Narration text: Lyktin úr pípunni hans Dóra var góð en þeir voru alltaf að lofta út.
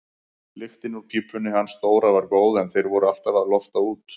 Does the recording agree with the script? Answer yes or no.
yes